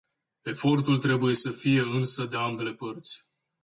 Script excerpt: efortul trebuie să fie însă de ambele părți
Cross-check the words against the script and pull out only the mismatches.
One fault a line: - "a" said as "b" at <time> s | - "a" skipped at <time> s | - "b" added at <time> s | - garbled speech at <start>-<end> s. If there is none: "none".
none